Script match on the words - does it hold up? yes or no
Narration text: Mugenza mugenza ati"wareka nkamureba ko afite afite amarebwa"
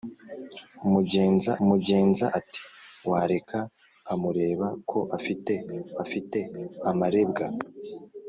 yes